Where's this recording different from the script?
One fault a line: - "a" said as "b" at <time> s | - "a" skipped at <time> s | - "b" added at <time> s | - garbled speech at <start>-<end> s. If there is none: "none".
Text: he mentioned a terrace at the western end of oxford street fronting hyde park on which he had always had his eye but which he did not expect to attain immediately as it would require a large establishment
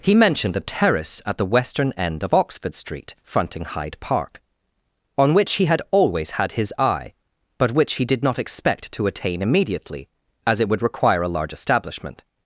none